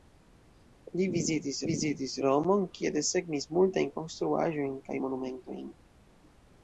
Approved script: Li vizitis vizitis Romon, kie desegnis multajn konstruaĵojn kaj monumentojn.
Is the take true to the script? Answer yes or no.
yes